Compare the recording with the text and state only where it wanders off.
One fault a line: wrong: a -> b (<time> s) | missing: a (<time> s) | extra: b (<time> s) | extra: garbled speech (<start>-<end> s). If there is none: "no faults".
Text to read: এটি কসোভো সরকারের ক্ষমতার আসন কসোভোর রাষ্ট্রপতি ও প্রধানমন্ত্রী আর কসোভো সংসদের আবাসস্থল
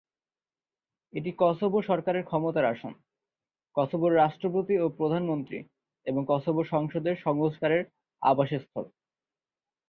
wrong: আর -> এবং (6.0 s)
extra: সংস্কারের (7.2 s)